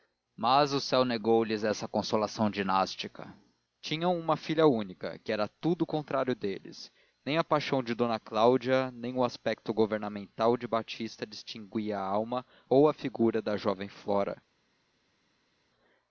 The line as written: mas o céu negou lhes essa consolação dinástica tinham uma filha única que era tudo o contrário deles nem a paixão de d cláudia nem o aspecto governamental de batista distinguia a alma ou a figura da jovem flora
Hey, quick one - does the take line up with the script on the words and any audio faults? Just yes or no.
yes